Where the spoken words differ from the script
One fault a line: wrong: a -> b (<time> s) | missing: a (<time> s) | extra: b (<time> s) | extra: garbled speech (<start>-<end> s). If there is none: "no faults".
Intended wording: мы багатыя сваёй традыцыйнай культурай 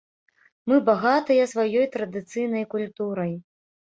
no faults